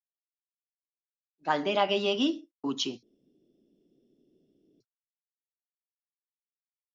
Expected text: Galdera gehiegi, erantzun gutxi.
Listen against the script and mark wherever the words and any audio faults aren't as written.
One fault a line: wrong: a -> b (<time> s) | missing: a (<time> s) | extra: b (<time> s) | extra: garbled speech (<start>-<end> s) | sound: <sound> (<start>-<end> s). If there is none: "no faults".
missing: erantzun (2.3 s)